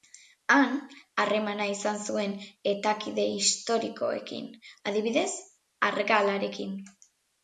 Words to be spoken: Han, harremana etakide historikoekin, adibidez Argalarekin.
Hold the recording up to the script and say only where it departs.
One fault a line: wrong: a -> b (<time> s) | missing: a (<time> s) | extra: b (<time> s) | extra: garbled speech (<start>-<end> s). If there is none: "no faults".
extra: izan zuen (1.7 s)